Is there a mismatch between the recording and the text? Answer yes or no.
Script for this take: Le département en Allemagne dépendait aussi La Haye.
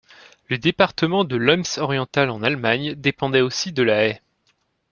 yes